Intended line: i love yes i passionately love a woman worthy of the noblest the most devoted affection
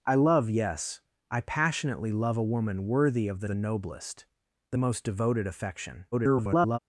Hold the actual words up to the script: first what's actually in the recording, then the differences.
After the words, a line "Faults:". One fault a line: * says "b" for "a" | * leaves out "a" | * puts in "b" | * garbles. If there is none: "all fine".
i love yes i passionately love a woman worthy of the the noblest the most devoted affection [garbled]
Faults:
* puts in "the"
* garbles